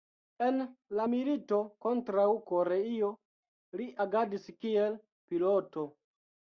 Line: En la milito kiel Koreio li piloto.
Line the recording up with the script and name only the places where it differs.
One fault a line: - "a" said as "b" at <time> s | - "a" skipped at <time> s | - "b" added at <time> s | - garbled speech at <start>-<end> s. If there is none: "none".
- "kiel" said as "kontraŭ" at 1.9 s
- "agadis kiel" added at 4.1 s